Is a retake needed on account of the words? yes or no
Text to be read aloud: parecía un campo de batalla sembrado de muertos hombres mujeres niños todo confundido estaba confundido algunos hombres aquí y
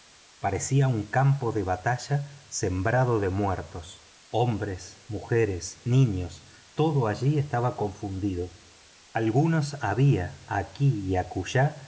yes